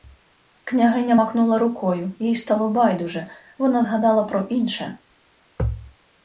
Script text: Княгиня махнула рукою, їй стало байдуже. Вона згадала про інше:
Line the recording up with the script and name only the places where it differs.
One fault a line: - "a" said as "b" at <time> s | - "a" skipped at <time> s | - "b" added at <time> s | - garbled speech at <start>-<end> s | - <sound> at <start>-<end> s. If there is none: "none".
none